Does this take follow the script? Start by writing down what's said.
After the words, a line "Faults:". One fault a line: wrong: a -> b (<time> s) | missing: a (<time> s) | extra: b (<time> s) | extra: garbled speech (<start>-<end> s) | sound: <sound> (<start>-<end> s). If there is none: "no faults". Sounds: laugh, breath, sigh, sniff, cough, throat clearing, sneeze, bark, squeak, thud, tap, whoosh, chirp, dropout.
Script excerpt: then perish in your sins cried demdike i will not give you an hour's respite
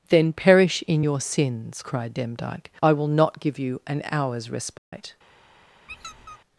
then perish in your sins cried demdike i will not give you an hour's respite
Faults:
sound: dropout (4.8-4.9 s)
sound: squeak (5.9-6.4 s)